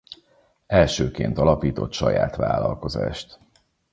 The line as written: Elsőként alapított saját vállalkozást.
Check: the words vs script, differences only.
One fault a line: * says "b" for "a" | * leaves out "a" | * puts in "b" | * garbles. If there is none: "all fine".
all fine